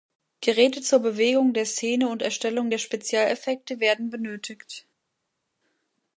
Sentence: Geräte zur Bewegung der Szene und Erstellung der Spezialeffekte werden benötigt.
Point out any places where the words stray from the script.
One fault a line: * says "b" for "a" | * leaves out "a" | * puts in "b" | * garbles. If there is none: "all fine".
all fine